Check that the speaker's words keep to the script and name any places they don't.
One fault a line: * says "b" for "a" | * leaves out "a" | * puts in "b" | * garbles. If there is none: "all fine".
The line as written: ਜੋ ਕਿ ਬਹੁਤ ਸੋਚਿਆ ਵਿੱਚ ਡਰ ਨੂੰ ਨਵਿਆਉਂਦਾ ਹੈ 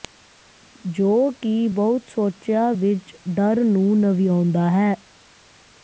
all fine